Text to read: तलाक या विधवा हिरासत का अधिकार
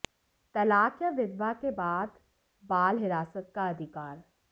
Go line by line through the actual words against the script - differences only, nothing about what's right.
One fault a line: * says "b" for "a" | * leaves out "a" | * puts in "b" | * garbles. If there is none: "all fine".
* puts in "के बाद बाल"